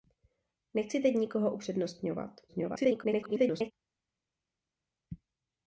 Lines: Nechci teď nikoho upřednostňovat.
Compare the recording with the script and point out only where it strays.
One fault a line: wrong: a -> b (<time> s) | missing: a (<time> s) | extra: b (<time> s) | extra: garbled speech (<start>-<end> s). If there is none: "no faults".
extra: garbled speech (2.5-3.7 s)